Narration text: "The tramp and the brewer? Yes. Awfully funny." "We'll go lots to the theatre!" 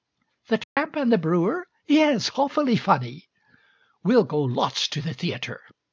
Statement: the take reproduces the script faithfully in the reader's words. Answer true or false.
true